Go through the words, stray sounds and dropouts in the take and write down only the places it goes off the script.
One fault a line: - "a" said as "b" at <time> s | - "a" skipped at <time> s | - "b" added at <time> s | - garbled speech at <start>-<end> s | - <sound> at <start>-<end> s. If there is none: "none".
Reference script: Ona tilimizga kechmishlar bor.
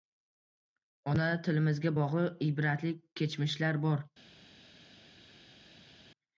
- "bog‘liq ibratli" added at 2.0 s